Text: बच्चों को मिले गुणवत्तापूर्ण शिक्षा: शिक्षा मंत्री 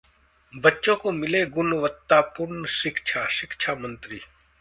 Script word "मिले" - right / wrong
right